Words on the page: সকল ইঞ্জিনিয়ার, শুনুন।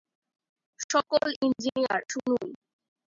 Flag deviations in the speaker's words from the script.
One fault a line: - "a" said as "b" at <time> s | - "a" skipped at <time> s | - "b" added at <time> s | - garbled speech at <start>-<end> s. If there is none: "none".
none